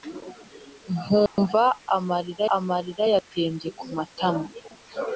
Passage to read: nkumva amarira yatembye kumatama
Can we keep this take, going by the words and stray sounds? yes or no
no